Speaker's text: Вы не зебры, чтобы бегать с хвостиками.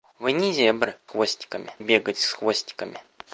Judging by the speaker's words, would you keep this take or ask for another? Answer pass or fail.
fail